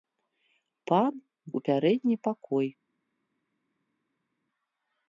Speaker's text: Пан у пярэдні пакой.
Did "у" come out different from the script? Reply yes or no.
no